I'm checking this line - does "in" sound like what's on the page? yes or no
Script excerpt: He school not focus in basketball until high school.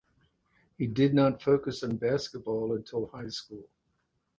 no